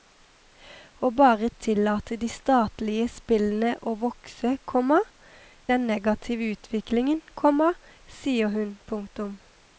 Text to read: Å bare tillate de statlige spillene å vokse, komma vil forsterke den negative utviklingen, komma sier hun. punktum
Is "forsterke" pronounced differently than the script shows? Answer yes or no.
yes